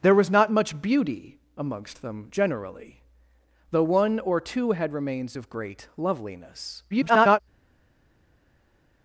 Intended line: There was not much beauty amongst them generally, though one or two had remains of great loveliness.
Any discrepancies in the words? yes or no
yes